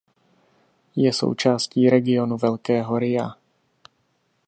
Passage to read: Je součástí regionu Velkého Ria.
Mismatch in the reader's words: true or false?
false